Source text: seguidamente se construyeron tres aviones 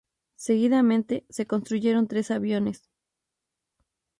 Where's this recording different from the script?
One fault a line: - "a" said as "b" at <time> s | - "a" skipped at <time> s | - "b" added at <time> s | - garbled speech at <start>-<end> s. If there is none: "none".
none